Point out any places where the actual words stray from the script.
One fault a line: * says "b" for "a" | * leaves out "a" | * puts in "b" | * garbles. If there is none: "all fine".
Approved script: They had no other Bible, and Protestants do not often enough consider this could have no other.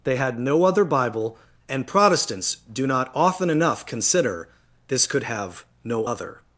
all fine